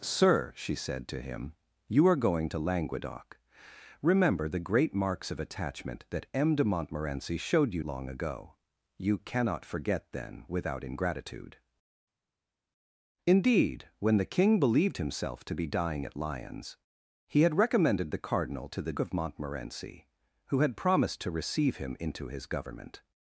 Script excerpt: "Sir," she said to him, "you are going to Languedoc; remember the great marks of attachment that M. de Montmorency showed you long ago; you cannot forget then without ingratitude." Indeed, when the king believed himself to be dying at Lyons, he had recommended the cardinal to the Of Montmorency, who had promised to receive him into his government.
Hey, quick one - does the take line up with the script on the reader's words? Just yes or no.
yes